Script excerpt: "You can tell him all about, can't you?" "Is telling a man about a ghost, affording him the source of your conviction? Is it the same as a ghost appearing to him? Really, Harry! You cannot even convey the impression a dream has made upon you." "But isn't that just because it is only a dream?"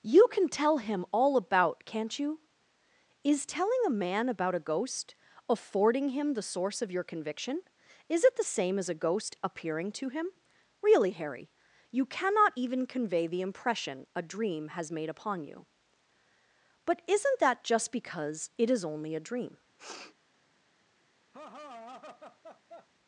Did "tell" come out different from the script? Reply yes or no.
no